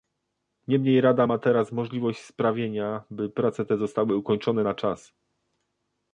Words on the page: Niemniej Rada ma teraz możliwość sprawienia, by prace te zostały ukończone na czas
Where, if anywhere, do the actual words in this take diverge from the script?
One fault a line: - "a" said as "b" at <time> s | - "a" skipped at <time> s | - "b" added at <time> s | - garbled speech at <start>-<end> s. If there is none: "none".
none